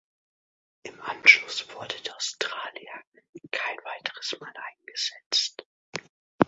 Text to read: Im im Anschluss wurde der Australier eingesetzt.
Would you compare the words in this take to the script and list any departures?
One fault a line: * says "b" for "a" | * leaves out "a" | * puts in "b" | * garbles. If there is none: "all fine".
* leaves out "im"
* puts in "kein weiteres Mal"